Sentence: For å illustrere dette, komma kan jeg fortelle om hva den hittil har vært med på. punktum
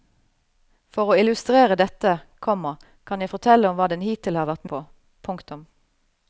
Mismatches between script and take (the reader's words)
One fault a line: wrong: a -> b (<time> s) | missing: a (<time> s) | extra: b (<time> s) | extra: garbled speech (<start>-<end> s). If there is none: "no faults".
missing: med (4.7 s)